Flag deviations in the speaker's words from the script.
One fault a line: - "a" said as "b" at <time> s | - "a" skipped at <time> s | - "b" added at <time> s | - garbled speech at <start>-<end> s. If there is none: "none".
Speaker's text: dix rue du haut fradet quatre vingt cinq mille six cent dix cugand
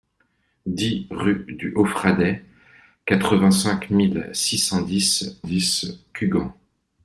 - "dix" added at 5.4 s